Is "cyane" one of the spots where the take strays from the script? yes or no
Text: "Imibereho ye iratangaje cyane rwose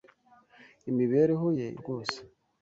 yes